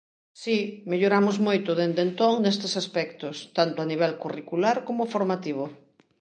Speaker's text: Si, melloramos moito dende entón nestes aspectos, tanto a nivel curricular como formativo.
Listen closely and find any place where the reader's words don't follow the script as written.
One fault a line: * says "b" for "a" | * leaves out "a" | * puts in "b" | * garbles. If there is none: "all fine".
all fine